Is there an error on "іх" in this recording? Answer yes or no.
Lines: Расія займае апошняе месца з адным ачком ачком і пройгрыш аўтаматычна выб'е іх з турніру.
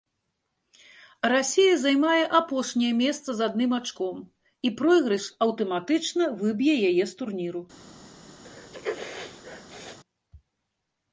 yes